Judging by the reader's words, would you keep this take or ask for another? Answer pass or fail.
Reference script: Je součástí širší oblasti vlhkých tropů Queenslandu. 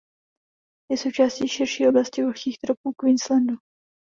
pass